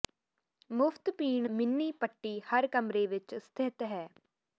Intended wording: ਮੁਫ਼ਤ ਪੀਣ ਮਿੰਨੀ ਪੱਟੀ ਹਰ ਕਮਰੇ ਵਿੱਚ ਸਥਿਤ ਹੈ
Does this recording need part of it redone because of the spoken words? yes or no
no